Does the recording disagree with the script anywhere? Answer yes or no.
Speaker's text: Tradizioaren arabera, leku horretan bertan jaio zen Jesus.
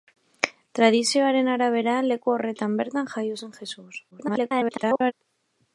yes